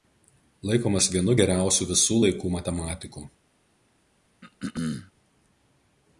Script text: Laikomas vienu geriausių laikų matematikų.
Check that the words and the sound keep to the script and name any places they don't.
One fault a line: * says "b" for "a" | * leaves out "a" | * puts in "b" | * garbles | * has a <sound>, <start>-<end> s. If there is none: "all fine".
* puts in "visų"
* has a throat clearing, 4.4-5.1 s